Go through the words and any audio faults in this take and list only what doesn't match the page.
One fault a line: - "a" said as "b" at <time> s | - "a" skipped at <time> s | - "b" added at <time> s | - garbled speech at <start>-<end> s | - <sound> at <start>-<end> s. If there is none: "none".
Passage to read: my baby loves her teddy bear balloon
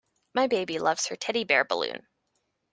none